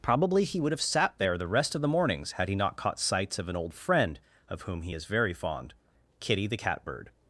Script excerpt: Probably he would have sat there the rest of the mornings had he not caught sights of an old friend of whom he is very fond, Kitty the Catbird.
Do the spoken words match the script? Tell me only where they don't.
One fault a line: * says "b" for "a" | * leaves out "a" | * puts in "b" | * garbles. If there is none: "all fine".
all fine